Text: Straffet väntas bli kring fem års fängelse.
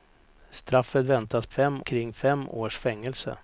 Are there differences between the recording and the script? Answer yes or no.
yes